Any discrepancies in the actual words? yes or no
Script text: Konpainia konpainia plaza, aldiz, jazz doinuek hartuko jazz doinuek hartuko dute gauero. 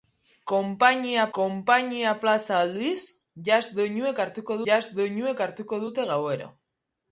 no